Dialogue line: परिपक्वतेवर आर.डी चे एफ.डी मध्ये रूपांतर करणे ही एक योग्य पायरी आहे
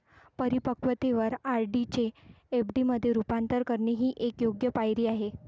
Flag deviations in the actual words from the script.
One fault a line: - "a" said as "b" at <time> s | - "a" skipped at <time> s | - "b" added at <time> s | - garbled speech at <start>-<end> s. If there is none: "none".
none